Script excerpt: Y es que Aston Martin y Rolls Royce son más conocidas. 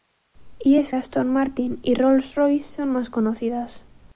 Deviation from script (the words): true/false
true